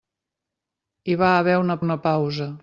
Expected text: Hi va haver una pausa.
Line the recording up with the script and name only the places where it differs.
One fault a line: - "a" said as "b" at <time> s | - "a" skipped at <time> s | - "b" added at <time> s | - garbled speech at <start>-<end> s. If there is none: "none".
- "una" added at 1.8 s